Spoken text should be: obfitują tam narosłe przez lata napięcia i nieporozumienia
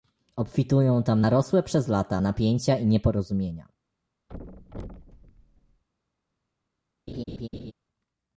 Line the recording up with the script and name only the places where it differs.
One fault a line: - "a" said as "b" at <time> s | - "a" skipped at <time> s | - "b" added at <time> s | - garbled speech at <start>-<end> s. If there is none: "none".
none